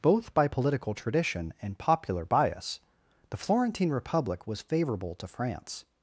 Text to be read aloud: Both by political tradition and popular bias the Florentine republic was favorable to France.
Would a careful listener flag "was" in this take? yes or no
no